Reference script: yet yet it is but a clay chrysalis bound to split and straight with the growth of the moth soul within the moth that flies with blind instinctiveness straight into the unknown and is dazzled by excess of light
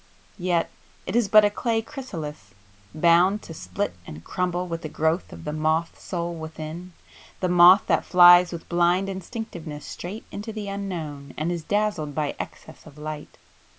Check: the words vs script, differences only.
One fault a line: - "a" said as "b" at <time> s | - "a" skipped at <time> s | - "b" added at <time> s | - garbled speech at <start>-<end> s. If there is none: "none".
- "yet" skipped at 0.7 s
- "straight" said as "crumble" at 4.2 s